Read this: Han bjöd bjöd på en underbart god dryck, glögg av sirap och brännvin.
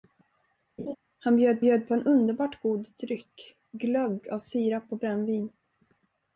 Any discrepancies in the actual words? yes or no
no